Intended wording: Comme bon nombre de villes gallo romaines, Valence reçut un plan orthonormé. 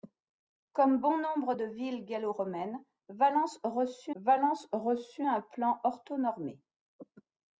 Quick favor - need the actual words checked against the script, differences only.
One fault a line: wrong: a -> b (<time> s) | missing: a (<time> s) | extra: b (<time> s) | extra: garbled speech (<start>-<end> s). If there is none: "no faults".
extra: Valence reçut (4.2 s)